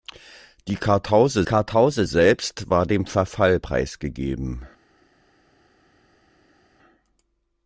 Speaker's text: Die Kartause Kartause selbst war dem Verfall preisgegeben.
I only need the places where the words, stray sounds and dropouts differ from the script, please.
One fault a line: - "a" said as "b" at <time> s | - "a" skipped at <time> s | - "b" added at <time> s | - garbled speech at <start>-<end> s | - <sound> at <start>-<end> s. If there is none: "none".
none